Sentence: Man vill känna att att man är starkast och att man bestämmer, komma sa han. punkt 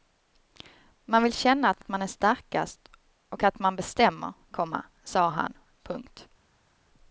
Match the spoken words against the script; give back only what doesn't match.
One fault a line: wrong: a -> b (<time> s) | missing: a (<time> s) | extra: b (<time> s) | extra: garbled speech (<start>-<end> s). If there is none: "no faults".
no faults